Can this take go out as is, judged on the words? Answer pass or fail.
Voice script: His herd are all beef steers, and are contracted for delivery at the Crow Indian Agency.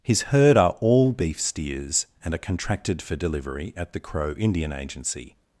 pass